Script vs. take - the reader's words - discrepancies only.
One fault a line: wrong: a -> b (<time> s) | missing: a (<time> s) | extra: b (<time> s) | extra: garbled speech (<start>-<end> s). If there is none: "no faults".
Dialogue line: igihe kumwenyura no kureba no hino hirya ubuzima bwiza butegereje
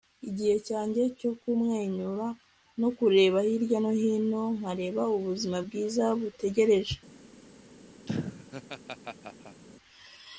extra: cyanjye cyo (0.7 s)
extra: hirya (3.5 s)
wrong: hirya -> nkareba (4.6 s)